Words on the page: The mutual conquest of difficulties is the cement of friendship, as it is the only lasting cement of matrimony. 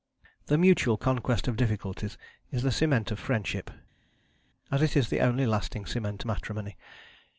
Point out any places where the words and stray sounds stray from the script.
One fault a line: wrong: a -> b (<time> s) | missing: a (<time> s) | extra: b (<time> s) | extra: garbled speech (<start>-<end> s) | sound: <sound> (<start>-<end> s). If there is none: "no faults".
missing: of (6.2 s)